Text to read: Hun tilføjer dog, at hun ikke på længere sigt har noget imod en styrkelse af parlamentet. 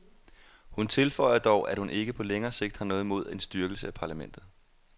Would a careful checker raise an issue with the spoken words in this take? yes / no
no